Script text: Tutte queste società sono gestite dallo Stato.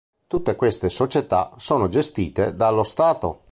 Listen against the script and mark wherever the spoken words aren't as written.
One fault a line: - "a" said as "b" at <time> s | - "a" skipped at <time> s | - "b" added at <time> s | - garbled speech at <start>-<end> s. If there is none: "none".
none